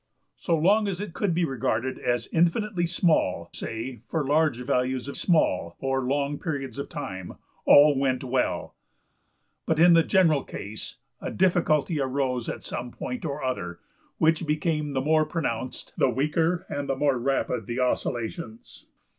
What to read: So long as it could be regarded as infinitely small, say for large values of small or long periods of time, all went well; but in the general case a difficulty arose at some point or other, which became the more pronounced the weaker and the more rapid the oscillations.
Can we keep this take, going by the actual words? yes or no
yes